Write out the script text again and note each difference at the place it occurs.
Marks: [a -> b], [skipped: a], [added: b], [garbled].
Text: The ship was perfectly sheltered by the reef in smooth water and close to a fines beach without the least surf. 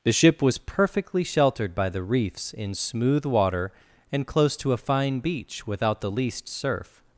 The ship was perfectly sheltered by the [reef -> reefs] in smooth water and close to a [fines -> fine] beach without the least surf.